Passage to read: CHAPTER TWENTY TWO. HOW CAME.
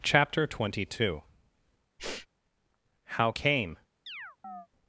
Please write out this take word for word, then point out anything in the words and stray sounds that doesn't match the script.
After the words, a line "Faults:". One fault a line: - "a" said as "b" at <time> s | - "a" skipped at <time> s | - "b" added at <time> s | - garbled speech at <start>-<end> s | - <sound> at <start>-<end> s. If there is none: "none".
CHAPTER TWENTY TWO. HOW CAME.
Faults:
- sniff at 2.0-2.3 s
- chirp at 4.1-4.7 s